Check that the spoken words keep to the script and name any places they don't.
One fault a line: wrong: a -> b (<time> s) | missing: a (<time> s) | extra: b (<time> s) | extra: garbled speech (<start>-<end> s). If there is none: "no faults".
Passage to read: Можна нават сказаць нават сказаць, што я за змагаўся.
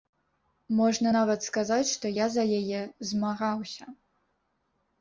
missing: нават сказаць (1.9 s)
extra: яе (2.6 s)